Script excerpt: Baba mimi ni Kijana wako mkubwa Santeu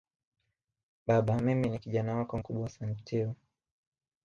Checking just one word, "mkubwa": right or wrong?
right